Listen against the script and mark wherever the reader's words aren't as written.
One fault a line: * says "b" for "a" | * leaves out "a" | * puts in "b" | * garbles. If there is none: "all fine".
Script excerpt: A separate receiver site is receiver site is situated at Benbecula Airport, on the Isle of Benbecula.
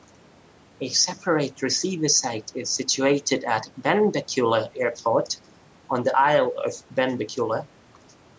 * leaves out "receiver site is"